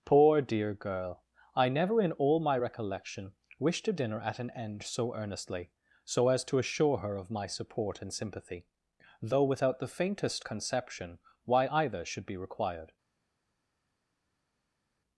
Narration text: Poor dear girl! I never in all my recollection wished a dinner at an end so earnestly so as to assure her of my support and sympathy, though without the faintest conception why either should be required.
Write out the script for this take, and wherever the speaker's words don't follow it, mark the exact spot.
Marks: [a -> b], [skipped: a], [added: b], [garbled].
Poor dear girl! I never in all my recollection wished a dinner at an end so earnestly so as to assure her of my support and sympathy, though without the faintest conception why either should be required.